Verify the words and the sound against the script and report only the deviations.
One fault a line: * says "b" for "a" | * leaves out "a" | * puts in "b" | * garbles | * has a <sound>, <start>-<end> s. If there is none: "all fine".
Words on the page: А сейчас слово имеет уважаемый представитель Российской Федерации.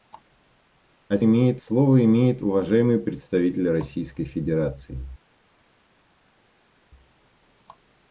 * says "имеет" for "сейчас"